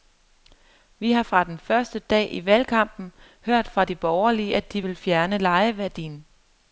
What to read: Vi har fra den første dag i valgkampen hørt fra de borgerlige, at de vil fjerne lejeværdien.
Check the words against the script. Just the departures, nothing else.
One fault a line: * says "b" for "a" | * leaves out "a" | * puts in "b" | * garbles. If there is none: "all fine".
all fine